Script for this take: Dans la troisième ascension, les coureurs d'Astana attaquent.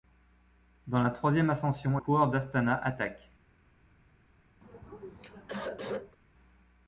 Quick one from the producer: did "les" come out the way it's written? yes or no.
no